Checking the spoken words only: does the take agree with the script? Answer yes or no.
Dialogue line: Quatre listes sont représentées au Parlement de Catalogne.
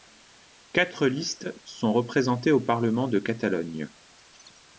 yes